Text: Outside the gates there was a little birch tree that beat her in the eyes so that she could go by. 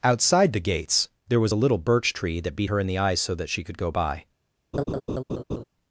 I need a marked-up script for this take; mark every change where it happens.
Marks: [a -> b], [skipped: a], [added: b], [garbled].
Outside the gates there was a little birch tree that beat her in the eyes so that she could go by.